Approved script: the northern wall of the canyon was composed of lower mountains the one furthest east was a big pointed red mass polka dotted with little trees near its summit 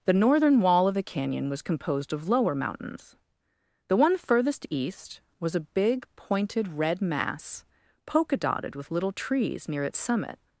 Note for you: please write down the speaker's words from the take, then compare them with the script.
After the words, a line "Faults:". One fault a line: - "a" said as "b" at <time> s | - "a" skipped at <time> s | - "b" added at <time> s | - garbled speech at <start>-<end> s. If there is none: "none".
the northern wall of the canyon was composed of lower mountains the one furthest east was a big pointed red mass polka dotted with little trees near its summit
Faults:
none